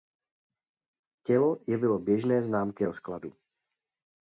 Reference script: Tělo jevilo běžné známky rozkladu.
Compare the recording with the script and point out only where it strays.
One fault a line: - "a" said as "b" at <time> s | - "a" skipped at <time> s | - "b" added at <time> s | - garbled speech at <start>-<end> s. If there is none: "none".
none